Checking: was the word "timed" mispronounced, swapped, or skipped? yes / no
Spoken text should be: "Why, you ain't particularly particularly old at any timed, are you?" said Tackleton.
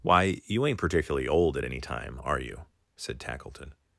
yes